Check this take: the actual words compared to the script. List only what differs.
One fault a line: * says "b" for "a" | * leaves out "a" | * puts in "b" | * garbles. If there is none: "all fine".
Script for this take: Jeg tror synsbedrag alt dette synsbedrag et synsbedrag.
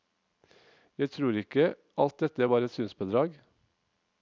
* says "ikke" for "synsbedrag"
* says "var" for "synsbedrag"